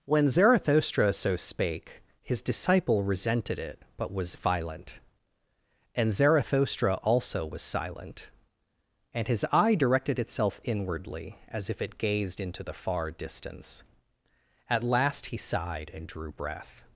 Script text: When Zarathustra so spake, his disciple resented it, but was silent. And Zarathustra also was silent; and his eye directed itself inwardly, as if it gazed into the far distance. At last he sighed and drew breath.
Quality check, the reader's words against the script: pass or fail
fail